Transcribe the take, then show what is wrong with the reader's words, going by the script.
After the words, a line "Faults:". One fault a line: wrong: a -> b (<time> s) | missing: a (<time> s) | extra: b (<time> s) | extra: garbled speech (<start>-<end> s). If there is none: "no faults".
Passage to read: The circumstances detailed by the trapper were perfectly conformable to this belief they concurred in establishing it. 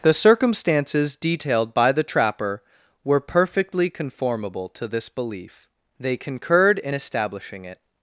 The circumstances detailed by the trapper were perfectly conformable to this belief they concurred in establishing it.
Faults:
no faults